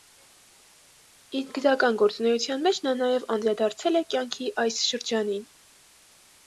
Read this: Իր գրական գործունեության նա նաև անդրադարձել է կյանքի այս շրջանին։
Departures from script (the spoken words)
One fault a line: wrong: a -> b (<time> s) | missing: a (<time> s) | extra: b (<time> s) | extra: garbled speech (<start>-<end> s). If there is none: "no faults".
extra: մեջ (2.7 s)